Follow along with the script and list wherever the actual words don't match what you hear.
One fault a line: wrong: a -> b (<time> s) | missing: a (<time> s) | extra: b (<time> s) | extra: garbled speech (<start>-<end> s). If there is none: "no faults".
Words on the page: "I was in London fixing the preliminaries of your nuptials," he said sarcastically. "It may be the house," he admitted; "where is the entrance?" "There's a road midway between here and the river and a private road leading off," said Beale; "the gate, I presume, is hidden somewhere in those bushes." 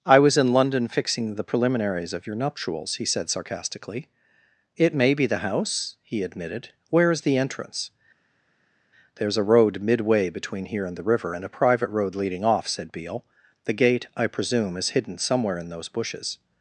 no faults